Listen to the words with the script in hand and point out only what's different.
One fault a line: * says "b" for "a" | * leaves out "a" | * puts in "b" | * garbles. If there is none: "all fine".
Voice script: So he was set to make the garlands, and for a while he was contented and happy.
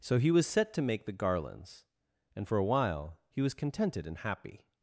all fine